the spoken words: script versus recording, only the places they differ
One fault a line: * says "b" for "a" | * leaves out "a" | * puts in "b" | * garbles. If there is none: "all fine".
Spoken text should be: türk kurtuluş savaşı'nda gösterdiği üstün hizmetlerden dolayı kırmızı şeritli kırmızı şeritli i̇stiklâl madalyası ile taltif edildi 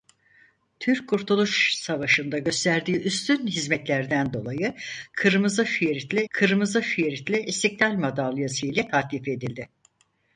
all fine